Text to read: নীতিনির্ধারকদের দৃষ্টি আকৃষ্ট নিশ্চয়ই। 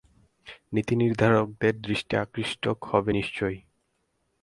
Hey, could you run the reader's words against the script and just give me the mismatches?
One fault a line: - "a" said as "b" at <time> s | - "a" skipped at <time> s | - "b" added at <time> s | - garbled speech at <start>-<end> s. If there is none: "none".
- "হবে" added at 2.8 s